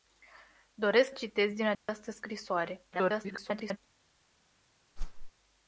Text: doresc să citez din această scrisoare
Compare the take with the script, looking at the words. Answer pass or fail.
fail